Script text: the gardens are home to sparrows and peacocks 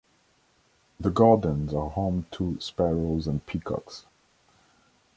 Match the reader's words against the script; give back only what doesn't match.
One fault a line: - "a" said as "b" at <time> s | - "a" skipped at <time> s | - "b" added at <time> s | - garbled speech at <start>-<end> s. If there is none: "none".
none